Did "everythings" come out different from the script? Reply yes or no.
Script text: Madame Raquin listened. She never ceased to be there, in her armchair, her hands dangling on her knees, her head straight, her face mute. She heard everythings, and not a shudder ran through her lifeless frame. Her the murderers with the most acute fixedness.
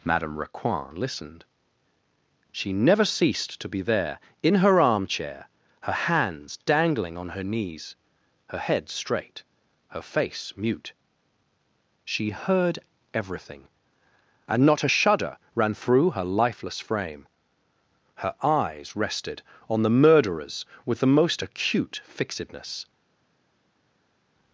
yes